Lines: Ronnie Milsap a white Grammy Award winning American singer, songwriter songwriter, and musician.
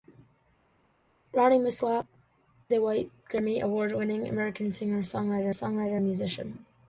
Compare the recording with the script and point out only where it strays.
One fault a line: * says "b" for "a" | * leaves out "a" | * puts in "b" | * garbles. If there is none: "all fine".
all fine